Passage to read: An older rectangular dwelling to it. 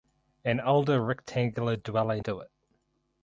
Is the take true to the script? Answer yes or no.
yes